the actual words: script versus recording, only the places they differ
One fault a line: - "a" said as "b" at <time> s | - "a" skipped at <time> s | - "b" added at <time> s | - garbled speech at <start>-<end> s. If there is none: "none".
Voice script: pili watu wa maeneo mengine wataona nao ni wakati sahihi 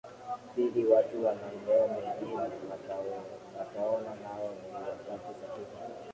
none